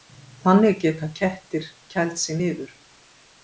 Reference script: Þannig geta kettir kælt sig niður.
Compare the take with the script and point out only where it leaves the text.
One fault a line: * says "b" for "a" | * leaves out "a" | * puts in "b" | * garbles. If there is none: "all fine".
all fine